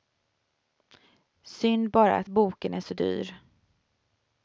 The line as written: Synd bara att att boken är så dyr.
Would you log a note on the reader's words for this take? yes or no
yes